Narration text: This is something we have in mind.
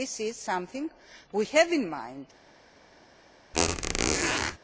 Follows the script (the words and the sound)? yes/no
no